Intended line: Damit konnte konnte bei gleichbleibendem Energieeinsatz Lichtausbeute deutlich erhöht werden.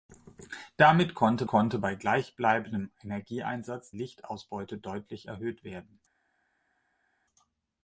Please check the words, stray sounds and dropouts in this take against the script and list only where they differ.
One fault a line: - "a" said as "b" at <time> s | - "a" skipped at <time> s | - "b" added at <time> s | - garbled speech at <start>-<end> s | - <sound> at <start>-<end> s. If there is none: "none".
none